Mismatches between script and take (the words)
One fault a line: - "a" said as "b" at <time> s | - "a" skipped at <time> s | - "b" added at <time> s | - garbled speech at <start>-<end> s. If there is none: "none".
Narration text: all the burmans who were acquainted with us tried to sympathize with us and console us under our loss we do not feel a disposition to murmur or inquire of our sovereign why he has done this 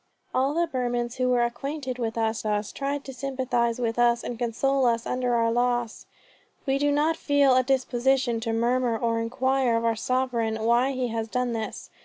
- "us" added at 2.5 s